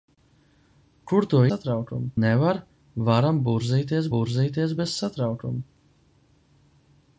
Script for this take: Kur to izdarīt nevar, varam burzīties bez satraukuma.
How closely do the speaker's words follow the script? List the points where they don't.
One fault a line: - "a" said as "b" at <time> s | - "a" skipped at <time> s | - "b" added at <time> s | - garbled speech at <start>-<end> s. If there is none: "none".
- "izdarīt" said as "satraukuma" at 1.5 s
- "burzīties" added at 4.2 s